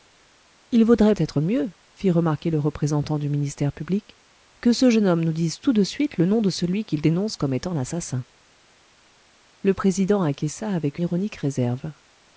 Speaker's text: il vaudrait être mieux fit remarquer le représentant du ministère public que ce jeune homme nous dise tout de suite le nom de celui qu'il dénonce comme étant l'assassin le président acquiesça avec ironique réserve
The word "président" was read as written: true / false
true